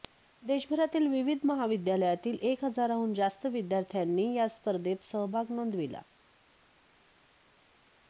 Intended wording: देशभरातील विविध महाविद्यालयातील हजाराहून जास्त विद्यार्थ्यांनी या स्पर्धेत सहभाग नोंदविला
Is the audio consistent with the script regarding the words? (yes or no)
no